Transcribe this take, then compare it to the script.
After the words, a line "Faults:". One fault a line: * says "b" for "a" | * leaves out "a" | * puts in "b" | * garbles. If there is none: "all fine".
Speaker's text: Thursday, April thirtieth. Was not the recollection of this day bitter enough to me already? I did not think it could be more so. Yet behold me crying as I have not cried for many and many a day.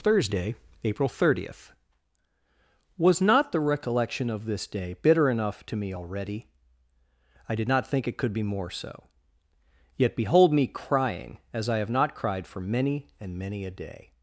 Thursday, April thirtieth. Was not the recollection of this day bitter enough to me already? I did not think it could be more so. Yet behold me crying as I have not cried for many and many a day.
Faults:
all fine